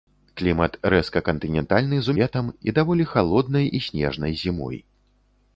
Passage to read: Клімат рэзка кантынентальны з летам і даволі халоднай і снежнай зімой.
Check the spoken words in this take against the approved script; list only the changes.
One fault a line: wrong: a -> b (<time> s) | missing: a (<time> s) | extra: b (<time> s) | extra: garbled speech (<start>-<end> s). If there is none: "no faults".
no faults